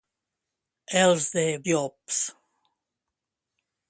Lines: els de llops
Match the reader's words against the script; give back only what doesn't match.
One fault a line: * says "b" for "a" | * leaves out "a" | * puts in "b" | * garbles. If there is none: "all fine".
all fine